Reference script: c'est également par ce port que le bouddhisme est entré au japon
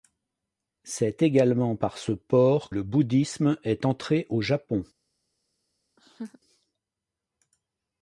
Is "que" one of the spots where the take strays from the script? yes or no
yes